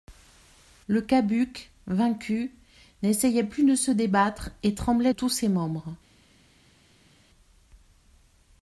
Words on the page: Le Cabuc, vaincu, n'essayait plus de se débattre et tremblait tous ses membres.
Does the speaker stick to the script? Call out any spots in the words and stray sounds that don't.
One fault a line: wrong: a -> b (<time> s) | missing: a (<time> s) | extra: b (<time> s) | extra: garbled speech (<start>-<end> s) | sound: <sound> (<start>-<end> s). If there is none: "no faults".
no faults